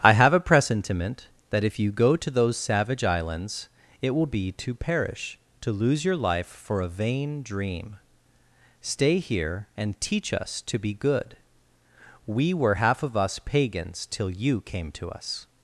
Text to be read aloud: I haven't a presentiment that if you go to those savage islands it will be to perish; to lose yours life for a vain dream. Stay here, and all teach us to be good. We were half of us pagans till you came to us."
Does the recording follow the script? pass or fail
fail